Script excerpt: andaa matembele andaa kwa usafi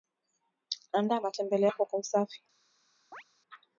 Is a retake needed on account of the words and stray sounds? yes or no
yes